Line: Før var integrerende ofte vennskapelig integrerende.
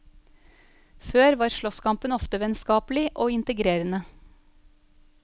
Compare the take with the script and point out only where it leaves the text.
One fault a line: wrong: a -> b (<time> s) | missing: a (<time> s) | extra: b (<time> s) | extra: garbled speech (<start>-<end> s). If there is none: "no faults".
wrong: integrerende -> slåsskampen (1.6 s)
extra: og (3.1 s)